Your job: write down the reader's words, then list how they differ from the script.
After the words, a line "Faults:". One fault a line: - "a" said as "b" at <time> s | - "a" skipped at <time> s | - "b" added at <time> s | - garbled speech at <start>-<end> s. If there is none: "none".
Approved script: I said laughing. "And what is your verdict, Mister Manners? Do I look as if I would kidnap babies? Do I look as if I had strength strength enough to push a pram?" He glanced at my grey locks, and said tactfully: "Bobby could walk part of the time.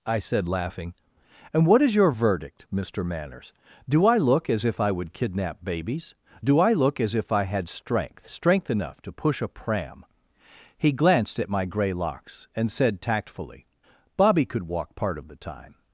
I said laughing. "And what is your verdict, Mister Manners? Do I look as if I would kidnap babies? Do I look as if I had strength strength enough to push a pram?" He glanced at my grey locks, and said tactfully: "Bobby could walk part of the time.
Faults:
none